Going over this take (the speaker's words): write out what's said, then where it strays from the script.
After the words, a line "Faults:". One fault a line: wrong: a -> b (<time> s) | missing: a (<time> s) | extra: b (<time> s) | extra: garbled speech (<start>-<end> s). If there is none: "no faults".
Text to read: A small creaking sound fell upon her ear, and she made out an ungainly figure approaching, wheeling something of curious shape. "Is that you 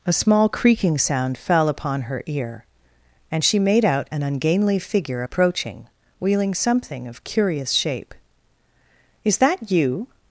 A small creaking sound fell upon her ear, and she made out an ungainly figure approaching, wheeling something of curious shape. "Is that you
Faults:
no faults